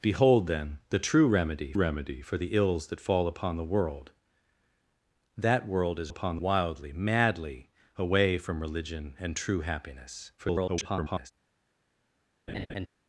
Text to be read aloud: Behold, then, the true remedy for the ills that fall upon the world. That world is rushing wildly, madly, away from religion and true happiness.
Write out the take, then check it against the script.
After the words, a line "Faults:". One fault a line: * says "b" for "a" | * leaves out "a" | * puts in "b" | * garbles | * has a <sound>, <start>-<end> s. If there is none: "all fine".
Behold, then, the true remedy remedy for the ills that fall upon the world. That world is upon wildly, madly, away from religion and true happiness. [garbled]
Faults:
* puts in "remedy"
* says "upon" for "rushing"
* garbles
* has a laugh, 12.5-12.9 s